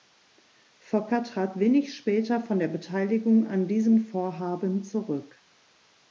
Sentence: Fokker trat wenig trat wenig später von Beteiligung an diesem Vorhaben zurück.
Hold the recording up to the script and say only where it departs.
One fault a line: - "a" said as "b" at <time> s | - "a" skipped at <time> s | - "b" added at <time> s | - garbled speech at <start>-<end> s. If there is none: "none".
- "trat wenig" skipped at 1.9 s
- "der" added at 2.6 s